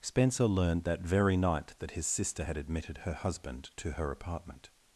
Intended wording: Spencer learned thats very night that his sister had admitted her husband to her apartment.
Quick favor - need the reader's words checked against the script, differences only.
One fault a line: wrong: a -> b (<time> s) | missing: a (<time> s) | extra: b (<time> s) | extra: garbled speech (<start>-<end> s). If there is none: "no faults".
wrong: thats -> that (0.8 s)